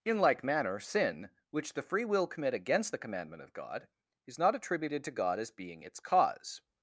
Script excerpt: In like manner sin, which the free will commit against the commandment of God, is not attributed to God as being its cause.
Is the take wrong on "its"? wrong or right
right